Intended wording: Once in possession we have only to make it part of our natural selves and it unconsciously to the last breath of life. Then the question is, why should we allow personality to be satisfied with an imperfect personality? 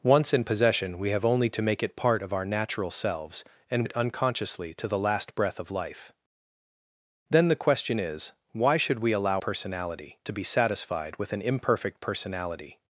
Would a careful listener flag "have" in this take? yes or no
no